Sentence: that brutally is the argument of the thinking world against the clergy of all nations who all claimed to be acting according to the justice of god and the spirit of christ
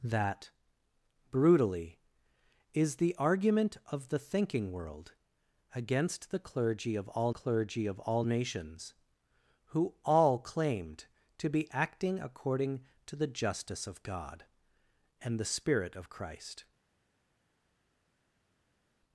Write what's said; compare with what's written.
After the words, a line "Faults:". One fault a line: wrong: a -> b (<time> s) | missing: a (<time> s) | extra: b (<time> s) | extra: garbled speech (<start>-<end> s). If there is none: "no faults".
that brutally is the argument of the thinking world against the clergy of all clergy of all nations who all claimed to be acting according to the justice of god and the spirit of christ
Faults:
extra: clergy of all (7.3 s)